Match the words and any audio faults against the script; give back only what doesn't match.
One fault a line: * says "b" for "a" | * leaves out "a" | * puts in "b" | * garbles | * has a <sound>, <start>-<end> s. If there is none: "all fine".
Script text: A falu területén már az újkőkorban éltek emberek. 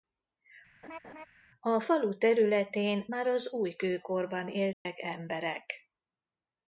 * has a laugh, 0.8-1.3 s
* has a dropout, 4.7-4.9 s